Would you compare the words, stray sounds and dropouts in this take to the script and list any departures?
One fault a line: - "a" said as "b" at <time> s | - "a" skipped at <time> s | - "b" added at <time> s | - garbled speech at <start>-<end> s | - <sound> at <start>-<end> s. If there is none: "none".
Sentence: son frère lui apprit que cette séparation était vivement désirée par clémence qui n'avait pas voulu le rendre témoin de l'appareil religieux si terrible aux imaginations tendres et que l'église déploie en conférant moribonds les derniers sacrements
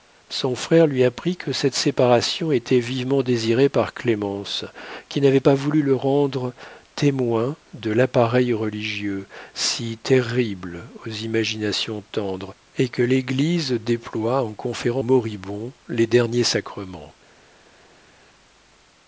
none